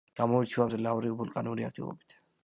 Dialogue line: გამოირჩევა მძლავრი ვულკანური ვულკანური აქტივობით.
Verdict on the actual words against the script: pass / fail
fail